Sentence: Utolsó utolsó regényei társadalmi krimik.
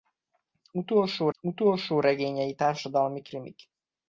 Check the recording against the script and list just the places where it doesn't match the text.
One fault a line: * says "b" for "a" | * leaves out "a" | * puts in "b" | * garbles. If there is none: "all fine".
all fine